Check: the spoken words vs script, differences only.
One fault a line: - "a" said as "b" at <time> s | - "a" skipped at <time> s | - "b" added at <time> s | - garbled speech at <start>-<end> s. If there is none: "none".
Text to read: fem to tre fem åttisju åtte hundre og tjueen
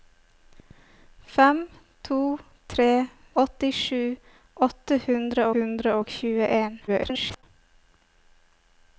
- "fem" skipped at 2.9 s
- "hundre" added at 5.5 s
- garbled speech at 6.9-7.4 s